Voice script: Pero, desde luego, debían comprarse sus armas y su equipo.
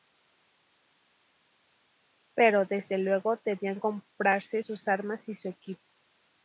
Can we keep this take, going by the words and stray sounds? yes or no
yes